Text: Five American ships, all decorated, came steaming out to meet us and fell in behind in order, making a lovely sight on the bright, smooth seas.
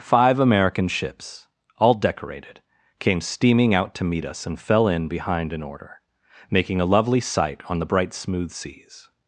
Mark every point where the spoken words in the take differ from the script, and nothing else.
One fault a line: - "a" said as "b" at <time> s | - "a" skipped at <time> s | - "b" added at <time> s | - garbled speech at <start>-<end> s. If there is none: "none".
none